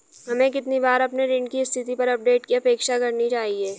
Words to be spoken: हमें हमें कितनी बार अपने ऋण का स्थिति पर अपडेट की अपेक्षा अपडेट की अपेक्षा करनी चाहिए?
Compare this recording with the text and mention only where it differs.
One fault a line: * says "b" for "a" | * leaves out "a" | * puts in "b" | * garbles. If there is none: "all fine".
* leaves out "हमें"
* says "की" for "का"
* leaves out "अपडेट की अपेक्षा"